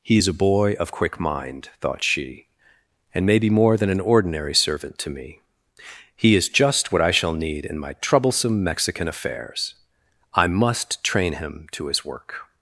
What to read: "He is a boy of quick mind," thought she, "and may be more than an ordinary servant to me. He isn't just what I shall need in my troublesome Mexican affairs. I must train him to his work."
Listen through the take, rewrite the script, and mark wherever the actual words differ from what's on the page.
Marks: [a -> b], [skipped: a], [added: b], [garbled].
"He is a boy of quick mind," thought she, "and may be more than an ordinary servant to me. He [isn't -> is] just what I shall need in my troublesome Mexican affairs. I must train him to his work."